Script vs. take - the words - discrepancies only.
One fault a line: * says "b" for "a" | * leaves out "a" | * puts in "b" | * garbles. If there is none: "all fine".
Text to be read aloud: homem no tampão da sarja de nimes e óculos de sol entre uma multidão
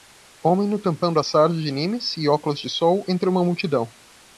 all fine